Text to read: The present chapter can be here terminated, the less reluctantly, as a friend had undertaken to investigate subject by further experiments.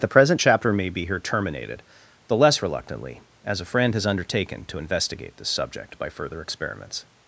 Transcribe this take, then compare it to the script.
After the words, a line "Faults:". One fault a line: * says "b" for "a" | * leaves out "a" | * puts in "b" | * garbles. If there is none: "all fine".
The present chapter may be here terminated, the less reluctantly, as a friend has undertaken to investigate this subject by further experiments.
Faults:
* says "may" for "can"
* says "has" for "had"
* puts in "this"